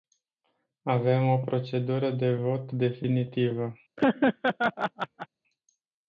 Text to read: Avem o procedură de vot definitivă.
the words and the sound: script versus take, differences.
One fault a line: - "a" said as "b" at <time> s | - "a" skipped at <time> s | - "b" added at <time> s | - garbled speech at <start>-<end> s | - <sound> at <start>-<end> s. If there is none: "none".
- laugh at 4.0-5.3 s